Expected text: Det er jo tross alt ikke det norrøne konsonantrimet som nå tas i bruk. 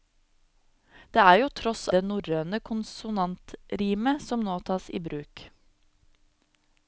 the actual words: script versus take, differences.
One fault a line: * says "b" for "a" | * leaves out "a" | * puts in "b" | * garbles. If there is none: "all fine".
* leaves out "alt ikke"